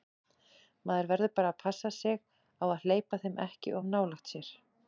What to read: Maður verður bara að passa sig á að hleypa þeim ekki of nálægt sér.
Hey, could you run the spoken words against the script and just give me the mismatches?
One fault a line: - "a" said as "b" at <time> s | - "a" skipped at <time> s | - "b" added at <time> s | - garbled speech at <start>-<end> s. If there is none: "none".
none